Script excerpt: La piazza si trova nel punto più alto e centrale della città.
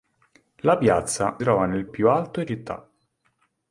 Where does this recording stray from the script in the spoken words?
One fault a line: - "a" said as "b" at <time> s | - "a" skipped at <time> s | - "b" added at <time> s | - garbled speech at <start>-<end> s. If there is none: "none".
- "si" skipped at 1.4 s
- "punto" skipped at 1.9 s
- "centrale della" skipped at 2.5 s